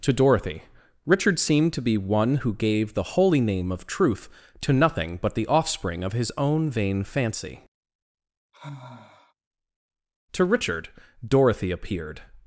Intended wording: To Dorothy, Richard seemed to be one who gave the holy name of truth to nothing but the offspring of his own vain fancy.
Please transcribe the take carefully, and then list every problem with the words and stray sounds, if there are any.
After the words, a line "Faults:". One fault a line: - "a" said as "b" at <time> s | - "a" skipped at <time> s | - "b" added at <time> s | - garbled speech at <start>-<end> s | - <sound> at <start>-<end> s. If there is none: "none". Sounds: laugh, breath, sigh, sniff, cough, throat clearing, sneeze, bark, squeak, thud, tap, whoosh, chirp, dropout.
To Dorothy, Richard seemed to be one who gave the holy name of truth to nothing but the offspring of his own vain fancy. To Richard, Dorothy appeared
Faults:
- sigh at 8.5-9.3 s
- "To Richard Dorothy appeared" added at 10.3 s